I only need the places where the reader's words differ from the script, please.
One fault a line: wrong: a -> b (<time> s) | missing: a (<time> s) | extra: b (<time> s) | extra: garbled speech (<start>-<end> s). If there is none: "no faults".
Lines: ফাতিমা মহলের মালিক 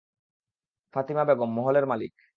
extra: বেগম (1.2 s)